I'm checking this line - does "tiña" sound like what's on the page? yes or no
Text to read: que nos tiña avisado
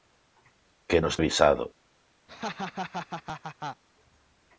no